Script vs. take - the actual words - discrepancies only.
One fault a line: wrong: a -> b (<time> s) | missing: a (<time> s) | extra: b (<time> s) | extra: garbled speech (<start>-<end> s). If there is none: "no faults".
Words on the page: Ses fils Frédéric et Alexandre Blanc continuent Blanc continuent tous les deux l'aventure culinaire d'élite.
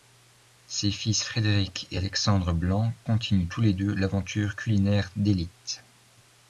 missing: Blanc continuent (3.5 s)